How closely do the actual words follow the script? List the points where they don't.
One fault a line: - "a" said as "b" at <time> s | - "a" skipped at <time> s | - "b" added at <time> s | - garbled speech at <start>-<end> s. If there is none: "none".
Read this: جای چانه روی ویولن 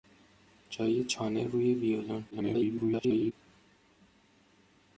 - garbled speech at 2.3-3.3 s